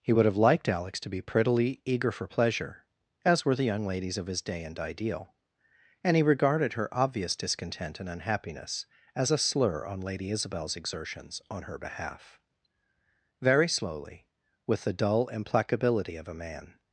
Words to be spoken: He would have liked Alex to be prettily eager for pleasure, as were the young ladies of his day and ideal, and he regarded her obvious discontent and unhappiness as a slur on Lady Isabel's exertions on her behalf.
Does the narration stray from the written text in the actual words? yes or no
yes